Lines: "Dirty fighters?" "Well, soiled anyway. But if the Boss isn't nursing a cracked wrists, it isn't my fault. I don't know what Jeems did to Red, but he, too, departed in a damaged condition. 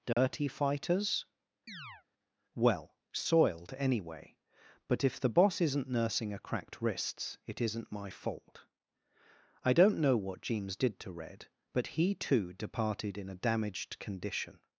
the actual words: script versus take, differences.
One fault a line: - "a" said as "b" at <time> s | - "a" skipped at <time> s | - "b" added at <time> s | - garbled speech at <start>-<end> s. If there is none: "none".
none